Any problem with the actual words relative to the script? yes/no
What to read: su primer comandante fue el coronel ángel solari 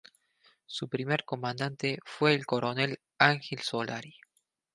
no